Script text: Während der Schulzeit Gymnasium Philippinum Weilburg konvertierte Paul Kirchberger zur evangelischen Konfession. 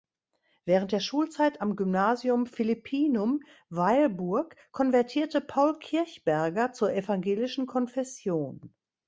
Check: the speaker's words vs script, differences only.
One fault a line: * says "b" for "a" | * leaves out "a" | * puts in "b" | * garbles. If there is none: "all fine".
* puts in "am"